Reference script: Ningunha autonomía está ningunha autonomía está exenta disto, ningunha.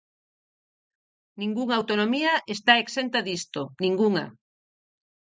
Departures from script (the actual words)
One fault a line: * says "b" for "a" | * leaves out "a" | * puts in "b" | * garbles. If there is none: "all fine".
* leaves out "ningunha autonomía está"